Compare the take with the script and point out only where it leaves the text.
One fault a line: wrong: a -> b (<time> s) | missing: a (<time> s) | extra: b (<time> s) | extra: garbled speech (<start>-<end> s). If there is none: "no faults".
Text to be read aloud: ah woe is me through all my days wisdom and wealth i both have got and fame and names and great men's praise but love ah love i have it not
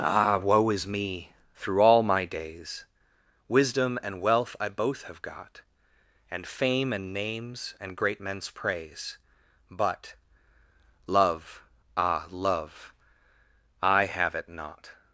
no faults